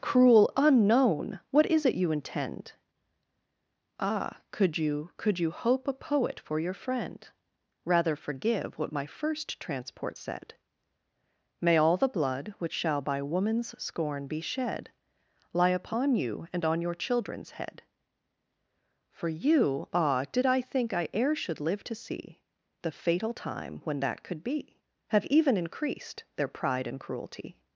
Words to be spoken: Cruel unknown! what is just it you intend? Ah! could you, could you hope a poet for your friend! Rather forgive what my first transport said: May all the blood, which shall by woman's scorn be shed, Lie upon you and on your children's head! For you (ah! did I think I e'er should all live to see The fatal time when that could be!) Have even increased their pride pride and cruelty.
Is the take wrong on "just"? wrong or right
wrong